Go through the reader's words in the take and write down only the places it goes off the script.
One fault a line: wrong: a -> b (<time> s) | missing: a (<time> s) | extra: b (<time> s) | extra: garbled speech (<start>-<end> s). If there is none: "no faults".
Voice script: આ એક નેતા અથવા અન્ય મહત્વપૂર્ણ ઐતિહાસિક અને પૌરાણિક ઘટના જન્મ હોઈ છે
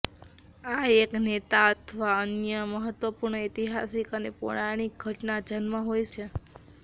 no faults